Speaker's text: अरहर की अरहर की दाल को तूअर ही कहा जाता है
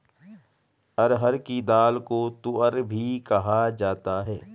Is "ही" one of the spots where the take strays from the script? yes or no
yes